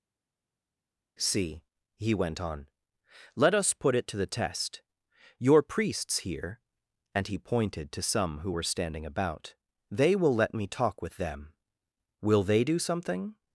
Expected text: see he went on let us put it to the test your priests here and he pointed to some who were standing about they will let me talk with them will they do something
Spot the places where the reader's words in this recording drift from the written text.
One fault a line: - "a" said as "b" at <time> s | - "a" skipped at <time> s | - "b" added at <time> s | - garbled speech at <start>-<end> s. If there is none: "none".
none